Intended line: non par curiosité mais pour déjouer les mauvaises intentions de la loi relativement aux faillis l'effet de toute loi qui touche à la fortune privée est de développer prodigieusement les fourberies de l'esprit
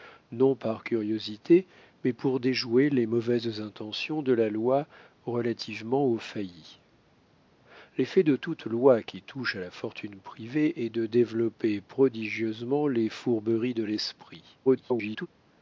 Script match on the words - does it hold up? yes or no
no